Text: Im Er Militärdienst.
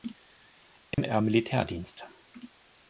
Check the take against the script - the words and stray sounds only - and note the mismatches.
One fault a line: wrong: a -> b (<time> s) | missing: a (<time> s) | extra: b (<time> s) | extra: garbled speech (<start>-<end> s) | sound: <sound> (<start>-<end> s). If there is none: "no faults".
sound: dropout (0.9-1.0 s)